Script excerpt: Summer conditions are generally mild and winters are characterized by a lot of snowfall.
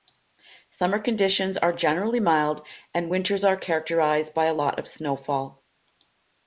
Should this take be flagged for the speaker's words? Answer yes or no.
no